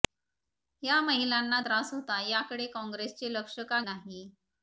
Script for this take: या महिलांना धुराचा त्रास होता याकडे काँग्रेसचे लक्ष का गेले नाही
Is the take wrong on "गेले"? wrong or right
wrong